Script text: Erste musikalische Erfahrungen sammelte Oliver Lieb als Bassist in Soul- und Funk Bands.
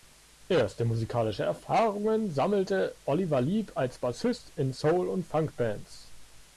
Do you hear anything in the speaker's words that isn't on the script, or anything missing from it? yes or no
no